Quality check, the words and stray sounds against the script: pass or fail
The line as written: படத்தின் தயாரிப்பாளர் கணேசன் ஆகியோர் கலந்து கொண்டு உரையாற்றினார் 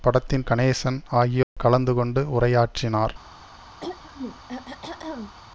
fail